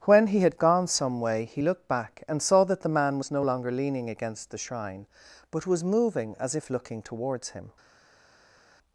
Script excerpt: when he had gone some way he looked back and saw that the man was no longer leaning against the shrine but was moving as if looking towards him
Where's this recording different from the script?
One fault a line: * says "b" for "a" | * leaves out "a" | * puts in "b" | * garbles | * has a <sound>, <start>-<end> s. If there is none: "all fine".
all fine